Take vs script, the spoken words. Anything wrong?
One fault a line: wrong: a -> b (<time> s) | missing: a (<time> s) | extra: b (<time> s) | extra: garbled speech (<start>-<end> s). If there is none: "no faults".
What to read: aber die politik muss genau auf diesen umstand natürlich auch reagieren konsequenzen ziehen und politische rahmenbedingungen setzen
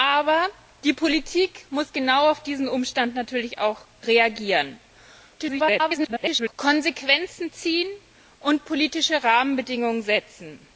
extra: garbled speech (5.4-6.5 s)